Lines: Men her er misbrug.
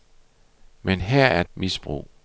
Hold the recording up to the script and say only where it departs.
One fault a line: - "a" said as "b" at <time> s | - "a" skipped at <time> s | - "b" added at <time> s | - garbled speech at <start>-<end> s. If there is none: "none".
none